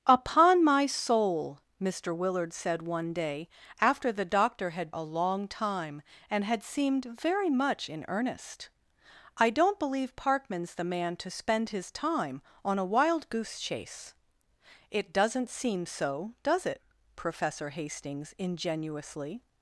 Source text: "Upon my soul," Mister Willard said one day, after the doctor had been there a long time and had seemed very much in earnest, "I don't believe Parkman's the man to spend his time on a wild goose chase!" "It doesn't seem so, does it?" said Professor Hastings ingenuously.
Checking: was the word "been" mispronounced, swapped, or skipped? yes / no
yes